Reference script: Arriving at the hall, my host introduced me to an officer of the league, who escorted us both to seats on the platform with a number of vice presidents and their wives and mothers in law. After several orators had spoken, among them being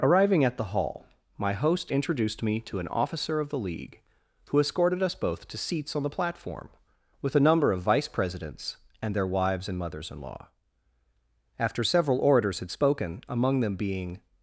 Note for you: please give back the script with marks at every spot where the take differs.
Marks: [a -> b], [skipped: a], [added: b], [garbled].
Arriving at the hall, my host introduced me to an officer of the league, who escorted us both to seats on the platform with a number of vice presidents and their wives and mothers in law. After several orators had spoken, among them being